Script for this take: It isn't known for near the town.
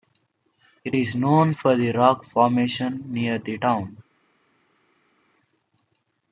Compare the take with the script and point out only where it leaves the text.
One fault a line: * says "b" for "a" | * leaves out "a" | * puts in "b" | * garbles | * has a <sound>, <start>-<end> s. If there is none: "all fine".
* says "is" for "isn't"
* puts in "the rock formation"